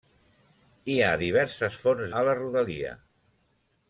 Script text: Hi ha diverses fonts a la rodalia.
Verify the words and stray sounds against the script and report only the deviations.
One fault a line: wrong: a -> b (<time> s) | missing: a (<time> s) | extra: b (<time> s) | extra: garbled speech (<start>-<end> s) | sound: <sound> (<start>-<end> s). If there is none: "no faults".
no faults